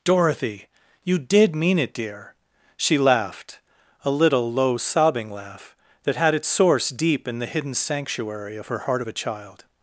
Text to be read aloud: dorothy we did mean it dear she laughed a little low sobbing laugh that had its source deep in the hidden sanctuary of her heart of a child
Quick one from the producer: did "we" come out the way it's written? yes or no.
no